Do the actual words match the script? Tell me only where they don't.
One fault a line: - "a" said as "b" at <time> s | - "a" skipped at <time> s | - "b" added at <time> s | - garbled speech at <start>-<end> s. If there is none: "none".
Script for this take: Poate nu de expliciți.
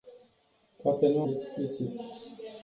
none